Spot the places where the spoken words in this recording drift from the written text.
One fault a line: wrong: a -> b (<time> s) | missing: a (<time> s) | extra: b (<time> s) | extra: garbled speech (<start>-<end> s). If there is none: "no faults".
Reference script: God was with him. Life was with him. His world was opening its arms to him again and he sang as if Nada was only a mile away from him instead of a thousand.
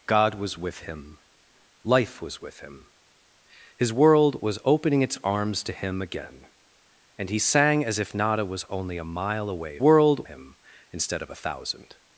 wrong: from -> world (9.8 s)